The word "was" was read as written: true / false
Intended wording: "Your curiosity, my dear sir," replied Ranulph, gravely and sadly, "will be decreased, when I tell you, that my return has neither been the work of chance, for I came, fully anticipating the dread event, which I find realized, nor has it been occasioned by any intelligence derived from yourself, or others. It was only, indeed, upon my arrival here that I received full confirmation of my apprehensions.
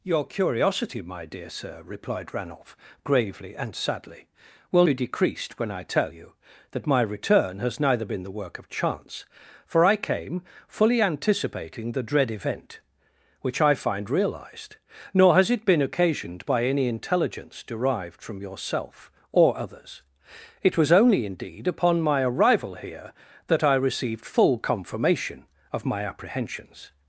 true